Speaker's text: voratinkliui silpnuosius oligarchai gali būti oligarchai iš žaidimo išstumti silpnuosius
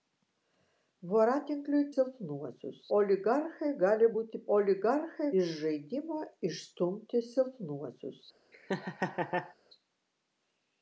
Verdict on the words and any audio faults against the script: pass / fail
fail